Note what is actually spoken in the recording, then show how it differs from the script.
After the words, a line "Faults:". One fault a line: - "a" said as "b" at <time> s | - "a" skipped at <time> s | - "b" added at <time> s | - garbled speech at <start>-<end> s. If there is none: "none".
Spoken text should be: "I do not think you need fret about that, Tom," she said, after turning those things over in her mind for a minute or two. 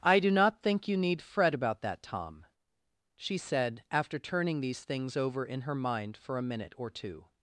"I do not think you need fret about that, Tom," she said, after turning these things over in her mind for a minute or two.
Faults:
- "those" said as "these" at 4.6 s